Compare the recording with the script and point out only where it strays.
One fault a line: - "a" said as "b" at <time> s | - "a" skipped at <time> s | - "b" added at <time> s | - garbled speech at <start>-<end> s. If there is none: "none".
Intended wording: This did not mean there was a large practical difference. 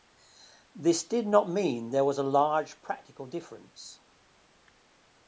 none